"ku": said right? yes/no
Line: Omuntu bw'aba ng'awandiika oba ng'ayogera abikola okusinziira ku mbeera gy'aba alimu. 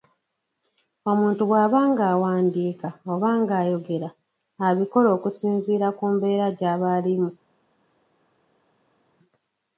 yes